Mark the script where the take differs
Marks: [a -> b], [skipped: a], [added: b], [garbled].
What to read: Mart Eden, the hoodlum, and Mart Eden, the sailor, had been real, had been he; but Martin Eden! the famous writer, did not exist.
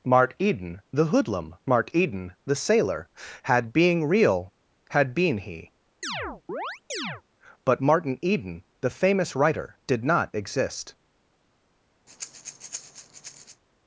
Mart Eden, the hoodlum, [skipped: and] Mart Eden, the sailor, had [been -> being] real, had been he; but Martin Eden! the famous writer, did not exist.